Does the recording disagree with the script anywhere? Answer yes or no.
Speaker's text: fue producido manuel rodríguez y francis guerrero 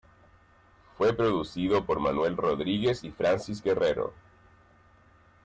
yes